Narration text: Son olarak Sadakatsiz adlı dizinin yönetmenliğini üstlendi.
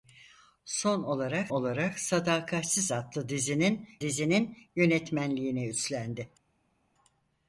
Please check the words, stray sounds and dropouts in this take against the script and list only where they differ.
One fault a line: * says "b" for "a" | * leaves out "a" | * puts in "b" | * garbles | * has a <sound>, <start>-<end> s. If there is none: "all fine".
* puts in "olarak"
* puts in "dizinin"